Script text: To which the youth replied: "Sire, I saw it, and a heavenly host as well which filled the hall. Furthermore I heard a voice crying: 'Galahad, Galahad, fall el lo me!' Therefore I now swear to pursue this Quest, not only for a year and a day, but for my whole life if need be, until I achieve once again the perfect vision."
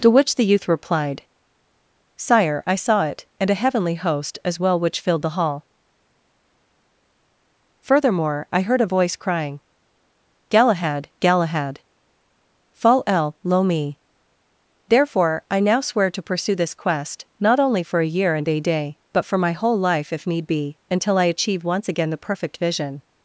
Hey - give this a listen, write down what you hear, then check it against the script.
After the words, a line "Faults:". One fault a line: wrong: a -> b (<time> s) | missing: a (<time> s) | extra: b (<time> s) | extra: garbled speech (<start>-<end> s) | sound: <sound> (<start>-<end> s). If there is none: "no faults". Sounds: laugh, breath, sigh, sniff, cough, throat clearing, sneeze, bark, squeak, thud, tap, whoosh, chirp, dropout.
To which the youth replied: "Sire, I saw it, and a heavenly host as well which filled the hall. Furthermore I heard a voice crying: 'Galahad, Galahad, fall el lo me!' Therefore I now swear to pursue this Quest, not only for a year and a day, but for my whole life if need be, until I achieve once again the perfect vision."
Faults:
no faults